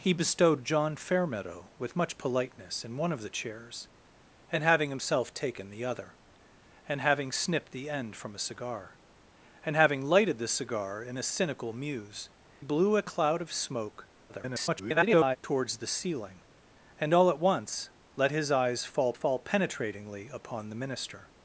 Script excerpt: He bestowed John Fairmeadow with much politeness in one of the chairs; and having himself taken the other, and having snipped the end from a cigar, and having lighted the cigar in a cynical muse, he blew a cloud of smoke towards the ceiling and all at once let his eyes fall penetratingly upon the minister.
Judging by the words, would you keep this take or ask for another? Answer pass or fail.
fail